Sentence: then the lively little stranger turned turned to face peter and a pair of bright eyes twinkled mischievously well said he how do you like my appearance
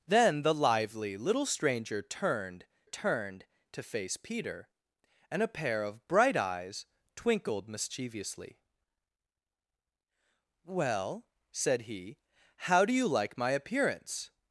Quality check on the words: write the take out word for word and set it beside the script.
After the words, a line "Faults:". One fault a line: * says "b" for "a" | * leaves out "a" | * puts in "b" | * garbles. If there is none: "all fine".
then the lively little stranger turned turned to face peter and a pair of bright eyes twinkled mischievously well said he how do you like my appearance
Faults:
all fine